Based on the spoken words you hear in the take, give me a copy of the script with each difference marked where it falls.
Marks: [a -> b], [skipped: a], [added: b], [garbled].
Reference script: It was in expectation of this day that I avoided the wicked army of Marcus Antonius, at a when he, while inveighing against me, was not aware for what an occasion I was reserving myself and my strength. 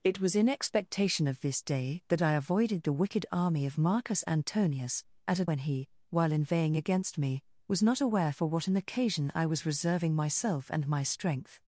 It was in expectation of this day that I avoided the wicked army of Marcus Antonius, at a when he, while inveighing against me, was not aware for what an occasion I was reserving myself and my strength.